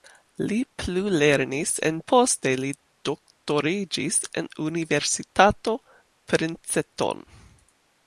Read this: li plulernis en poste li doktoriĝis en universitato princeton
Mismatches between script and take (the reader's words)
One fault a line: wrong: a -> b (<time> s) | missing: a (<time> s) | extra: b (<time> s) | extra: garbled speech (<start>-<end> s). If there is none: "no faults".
no faults